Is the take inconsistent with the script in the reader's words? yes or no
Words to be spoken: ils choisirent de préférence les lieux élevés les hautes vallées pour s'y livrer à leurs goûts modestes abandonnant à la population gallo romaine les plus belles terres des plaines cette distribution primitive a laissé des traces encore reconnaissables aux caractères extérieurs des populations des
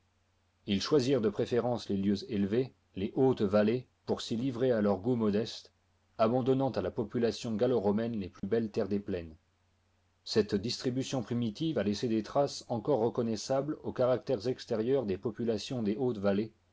no